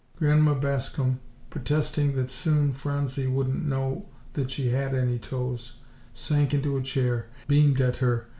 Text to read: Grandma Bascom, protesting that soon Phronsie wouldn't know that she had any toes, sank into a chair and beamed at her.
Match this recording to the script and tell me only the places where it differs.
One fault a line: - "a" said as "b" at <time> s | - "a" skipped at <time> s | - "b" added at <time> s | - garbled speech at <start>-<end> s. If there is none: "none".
- "and" skipped at 7.3 s